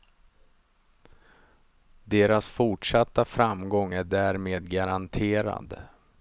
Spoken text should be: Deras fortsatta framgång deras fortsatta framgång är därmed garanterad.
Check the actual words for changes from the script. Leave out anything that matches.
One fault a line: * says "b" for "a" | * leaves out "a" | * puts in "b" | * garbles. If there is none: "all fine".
* leaves out "deras fortsatta framgång"